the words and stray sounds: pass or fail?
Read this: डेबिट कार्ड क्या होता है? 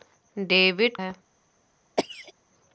fail